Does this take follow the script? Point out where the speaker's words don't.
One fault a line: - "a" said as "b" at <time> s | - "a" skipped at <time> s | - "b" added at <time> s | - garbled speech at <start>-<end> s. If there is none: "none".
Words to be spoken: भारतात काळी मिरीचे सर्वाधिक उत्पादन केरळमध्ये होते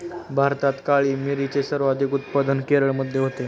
none